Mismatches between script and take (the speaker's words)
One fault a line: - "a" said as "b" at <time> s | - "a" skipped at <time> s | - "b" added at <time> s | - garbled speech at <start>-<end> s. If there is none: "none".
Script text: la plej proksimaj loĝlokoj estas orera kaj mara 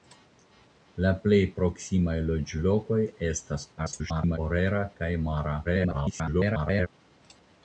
- garbled speech at 3.8-4.4 s
- garbled speech at 5.6-6.9 s